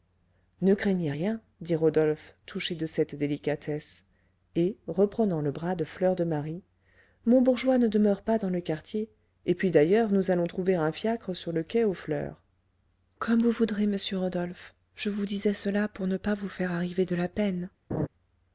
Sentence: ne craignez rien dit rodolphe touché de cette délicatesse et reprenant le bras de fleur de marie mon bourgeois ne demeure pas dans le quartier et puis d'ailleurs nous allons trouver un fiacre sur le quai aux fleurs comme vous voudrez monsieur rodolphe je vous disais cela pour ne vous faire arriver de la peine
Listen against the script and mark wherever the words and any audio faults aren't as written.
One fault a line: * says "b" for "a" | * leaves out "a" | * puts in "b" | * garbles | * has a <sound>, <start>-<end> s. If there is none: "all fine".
* puts in "pas"
* has a laugh, 17.9-18.1 s